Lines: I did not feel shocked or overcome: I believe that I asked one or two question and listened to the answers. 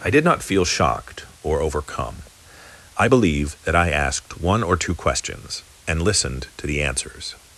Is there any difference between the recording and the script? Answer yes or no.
yes